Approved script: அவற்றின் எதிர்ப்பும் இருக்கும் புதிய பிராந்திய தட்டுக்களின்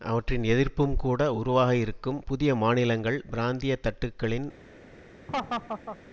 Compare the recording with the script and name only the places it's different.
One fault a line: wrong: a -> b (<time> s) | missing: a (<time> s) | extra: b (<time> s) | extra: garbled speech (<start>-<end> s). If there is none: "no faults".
extra: கூட உருவாக (0.9 s)
extra: மாநிலங்கள் (2.6 s)